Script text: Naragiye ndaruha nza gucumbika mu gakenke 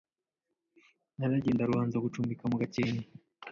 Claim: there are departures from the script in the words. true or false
false